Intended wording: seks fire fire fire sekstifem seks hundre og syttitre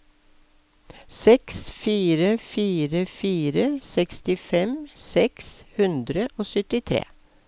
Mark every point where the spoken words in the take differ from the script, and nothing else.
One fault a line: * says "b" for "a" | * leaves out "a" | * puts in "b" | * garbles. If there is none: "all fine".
all fine